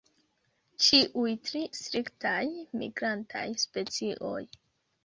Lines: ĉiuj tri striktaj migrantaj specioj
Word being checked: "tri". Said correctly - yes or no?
yes